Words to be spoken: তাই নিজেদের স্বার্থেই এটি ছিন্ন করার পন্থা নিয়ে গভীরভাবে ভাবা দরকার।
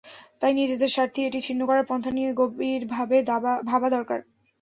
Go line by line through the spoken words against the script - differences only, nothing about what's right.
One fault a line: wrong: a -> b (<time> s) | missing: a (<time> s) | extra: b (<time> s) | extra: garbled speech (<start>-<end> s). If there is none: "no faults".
no faults